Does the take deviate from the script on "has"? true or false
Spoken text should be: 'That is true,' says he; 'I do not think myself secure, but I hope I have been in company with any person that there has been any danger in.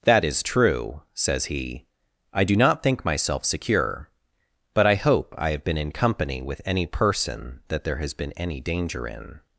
false